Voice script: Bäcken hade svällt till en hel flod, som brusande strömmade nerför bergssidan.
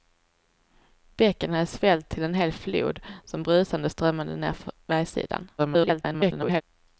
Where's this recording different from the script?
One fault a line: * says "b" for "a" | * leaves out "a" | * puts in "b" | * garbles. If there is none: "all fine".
* garbles